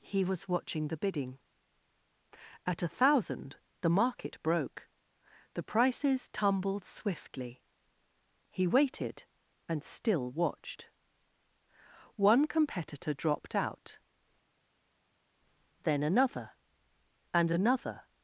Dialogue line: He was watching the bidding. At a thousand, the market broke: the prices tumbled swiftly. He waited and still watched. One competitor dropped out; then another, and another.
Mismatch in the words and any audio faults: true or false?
false